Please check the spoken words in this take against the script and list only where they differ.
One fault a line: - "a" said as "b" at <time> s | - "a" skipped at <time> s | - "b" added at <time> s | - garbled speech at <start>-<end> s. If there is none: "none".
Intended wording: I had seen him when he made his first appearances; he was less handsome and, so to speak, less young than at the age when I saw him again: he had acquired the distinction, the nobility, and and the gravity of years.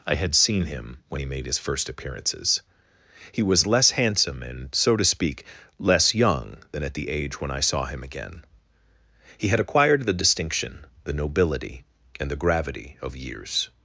- "and" skipped at 12.3 s